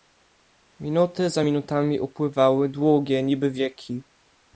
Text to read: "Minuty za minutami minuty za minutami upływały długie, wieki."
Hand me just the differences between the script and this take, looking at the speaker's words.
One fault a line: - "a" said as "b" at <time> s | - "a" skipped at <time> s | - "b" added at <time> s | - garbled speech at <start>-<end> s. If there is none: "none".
- "minuty za minutami" skipped at 2.0 s
- "niby" added at 3.2 s